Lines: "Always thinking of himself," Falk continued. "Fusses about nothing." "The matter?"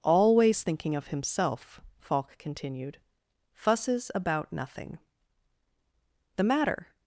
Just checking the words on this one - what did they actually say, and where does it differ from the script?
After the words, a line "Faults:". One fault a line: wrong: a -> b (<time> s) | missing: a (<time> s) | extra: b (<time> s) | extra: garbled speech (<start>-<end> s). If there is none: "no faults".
"Always thinking of himself," Falk continued. "Fusses about nothing." "The matter?"
Faults:
no faults